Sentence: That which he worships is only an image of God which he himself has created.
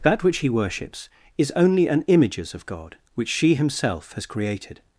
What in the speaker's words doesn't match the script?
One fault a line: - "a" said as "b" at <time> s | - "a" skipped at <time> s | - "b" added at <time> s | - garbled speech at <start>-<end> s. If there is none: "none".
- "image" said as "images" at 2.1 s
- "he" said as "she" at 3.3 s